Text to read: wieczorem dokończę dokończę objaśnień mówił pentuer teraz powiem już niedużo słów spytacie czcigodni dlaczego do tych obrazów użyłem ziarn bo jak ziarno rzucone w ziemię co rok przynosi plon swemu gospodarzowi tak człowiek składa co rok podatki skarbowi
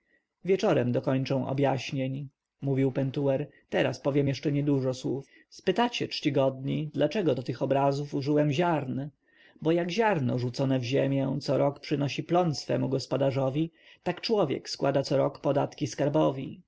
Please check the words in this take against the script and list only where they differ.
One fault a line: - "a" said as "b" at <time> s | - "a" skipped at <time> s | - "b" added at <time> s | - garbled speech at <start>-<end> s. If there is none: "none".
- "dokończę" skipped at 1.5 s
- "już" said as "jeszcze" at 4.3 s